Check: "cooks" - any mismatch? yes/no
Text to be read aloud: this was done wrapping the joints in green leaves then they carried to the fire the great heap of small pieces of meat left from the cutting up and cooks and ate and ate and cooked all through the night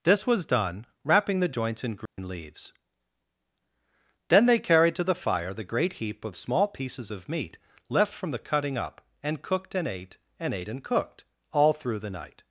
yes